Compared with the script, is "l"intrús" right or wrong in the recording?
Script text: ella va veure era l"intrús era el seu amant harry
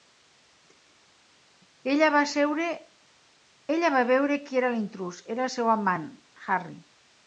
right